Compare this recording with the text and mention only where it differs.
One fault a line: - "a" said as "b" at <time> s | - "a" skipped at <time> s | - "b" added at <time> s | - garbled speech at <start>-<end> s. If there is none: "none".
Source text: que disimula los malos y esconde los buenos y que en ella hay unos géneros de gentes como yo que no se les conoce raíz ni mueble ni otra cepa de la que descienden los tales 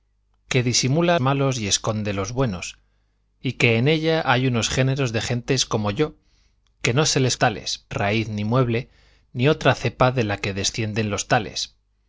- "los" skipped at 1.2 s
- "conoce" said as "tales" at 7.4 s